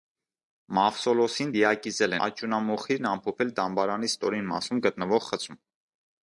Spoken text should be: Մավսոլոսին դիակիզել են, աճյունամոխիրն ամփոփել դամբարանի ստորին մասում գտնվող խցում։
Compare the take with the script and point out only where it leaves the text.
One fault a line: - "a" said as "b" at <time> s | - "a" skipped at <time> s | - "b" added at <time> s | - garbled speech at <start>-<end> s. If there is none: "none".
- "են" skipped at 2.1 s